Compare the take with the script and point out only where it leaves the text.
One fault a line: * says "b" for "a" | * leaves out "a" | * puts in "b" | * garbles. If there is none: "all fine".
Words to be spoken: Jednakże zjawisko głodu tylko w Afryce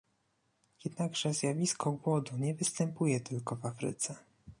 * puts in "nie występuje"